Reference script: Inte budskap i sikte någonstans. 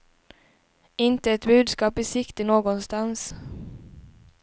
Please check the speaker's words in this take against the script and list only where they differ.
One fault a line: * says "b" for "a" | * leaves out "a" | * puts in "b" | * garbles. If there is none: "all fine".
* puts in "ett"